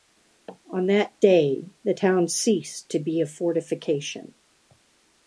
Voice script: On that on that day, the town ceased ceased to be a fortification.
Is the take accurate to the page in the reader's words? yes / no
no